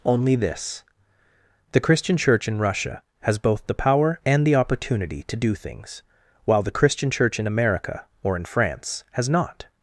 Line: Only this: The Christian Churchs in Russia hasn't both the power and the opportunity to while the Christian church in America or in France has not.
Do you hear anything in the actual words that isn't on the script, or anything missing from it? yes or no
yes